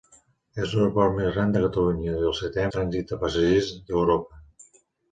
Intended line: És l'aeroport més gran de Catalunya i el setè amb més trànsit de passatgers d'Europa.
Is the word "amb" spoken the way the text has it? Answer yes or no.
no